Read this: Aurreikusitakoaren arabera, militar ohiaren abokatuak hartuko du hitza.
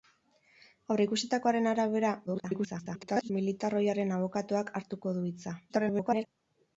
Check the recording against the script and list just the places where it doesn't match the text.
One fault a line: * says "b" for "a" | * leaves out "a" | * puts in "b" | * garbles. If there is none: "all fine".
* garbles
* garbles